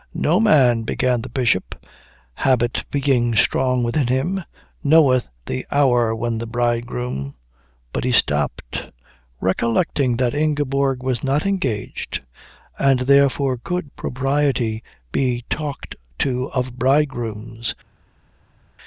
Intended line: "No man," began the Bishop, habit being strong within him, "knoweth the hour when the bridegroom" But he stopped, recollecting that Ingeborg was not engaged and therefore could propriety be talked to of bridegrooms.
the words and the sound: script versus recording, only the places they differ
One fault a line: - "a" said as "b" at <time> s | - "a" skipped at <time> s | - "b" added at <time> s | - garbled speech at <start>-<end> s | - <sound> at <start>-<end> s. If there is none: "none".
none